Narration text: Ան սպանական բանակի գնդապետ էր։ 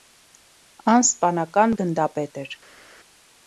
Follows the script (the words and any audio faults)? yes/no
no